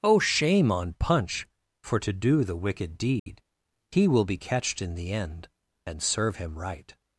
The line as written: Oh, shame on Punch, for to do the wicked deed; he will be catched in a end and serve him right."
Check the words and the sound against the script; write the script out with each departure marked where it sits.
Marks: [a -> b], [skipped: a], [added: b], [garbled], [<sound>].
Oh, shame on Punch, for to do the wicked deed; [dropout] he will be catched in [a -> the] end and serve him right."